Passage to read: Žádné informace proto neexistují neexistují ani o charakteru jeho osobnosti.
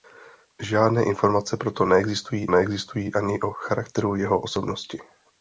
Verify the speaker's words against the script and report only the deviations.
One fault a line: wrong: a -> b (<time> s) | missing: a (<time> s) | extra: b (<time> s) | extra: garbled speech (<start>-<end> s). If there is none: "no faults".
no faults